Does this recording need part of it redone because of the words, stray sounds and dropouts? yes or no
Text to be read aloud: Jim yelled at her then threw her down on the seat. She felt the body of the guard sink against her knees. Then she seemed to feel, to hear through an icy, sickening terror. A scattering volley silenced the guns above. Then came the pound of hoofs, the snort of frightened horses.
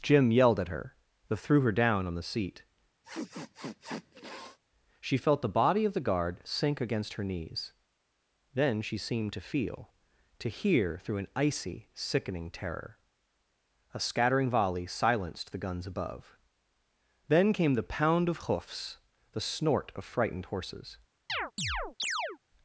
yes